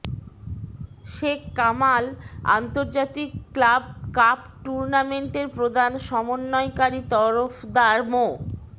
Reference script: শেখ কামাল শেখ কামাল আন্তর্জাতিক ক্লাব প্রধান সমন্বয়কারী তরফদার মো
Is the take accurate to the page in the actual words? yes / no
no